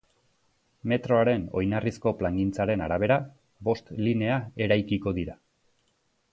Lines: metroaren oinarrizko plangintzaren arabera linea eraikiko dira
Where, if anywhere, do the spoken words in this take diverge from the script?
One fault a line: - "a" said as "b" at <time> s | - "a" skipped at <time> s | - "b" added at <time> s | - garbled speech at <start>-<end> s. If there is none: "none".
- "bost" added at 3.7 s